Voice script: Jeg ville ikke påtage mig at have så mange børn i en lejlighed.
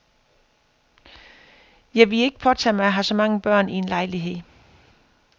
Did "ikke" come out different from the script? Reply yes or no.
no